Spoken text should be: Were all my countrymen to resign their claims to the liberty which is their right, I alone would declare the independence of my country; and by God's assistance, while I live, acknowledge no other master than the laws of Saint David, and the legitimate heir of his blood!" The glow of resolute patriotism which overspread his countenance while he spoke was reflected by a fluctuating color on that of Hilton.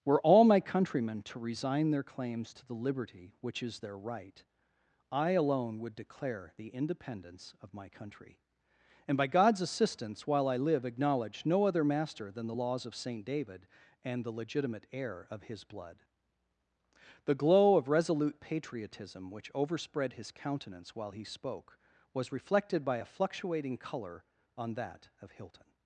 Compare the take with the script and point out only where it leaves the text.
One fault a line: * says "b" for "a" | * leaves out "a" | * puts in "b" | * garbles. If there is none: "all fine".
all fine